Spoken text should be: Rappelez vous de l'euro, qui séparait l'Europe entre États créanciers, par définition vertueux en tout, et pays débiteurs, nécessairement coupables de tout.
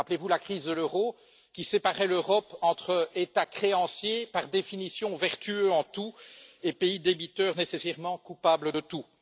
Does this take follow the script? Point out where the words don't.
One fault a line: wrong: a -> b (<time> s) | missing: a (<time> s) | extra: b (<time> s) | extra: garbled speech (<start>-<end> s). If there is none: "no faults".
extra: la crise (0.3 s)